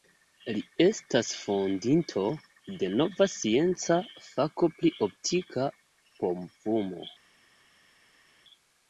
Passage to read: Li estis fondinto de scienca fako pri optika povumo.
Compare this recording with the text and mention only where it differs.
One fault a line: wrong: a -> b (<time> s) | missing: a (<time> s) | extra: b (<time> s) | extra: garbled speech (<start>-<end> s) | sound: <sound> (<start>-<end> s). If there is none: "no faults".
wrong: estis -> estas (0.8 s)
extra: nova (3.0 s)